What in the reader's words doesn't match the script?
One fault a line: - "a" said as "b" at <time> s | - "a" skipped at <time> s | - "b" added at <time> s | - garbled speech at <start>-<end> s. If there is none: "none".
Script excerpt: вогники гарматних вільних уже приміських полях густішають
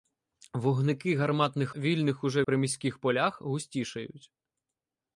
none